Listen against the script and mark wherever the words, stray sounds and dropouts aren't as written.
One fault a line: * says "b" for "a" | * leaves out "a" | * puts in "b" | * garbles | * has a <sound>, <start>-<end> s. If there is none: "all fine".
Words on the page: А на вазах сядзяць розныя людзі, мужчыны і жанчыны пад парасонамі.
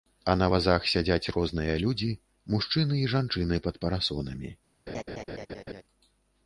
* has a laugh, 4.9-5.8 s